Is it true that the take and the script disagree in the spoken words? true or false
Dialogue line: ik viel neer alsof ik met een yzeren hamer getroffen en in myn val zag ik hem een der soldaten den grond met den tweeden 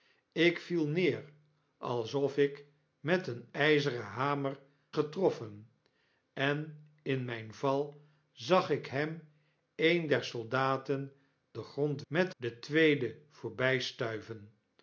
false